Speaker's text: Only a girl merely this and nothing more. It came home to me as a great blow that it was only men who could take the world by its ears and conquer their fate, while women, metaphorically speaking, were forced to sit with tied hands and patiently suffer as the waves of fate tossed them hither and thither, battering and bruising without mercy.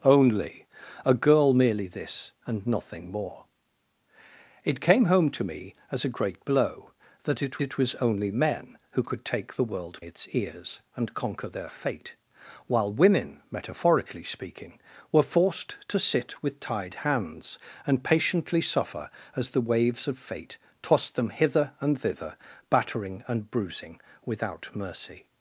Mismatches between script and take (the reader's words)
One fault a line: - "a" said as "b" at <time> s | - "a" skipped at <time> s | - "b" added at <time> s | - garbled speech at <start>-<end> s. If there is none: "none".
- "it" added at 7.6 s
- "by" skipped at 10.0 s